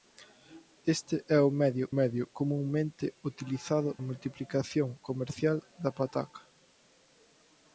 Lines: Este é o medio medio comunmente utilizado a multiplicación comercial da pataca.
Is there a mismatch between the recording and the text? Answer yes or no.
no